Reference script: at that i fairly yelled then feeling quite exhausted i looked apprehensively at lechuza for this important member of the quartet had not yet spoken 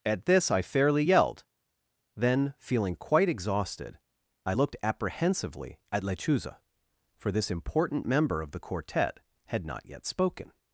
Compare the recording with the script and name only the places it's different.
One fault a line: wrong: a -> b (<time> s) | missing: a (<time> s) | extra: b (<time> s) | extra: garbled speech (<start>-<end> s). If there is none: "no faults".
wrong: that -> this (0.2 s)